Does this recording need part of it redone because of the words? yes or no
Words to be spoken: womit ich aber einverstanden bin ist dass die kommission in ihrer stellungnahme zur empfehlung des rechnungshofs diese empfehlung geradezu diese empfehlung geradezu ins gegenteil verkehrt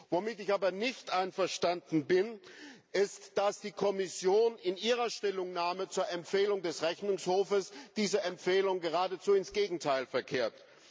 yes